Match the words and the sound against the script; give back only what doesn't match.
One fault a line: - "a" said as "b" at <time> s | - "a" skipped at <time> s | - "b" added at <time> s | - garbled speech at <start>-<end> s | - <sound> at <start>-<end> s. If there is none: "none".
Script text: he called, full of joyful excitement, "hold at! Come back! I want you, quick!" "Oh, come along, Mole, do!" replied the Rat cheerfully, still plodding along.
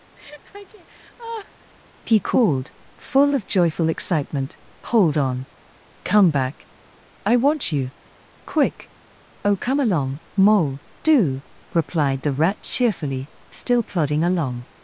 - laugh at 0.2-1.7 s
- "at" said as "on" at 5.2 s